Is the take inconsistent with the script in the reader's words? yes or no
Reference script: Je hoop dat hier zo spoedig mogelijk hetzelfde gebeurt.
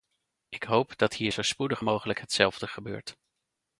yes